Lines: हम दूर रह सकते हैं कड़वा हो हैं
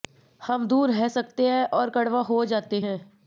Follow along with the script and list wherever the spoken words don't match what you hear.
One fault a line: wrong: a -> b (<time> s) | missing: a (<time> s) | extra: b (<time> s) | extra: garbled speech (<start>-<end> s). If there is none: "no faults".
extra: और (1.7 s)
extra: जाते (2.5 s)